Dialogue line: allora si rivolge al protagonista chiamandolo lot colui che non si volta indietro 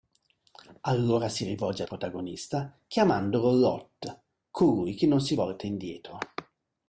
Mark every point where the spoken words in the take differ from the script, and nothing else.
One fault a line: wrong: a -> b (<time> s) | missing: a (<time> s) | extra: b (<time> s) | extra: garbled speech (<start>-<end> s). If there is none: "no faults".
no faults